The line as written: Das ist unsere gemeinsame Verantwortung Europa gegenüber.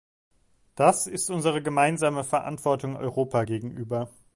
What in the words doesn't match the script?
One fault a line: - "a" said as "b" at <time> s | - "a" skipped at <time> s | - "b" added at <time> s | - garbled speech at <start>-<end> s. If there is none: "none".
none